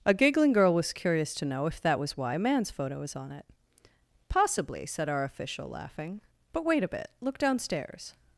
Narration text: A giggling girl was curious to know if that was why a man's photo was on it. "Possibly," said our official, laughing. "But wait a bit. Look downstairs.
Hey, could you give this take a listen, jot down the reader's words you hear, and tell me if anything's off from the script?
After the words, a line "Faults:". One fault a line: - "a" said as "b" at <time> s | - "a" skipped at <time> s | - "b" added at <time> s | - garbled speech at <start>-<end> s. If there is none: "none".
A giggling girl was curious to know if that was why a man's photo was on it. "Possibly," said our official, laughing. "But wait a bit. Look downstairs.
Faults:
none